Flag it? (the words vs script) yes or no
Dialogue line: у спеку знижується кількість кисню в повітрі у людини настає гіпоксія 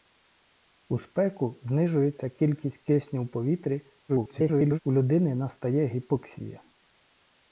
yes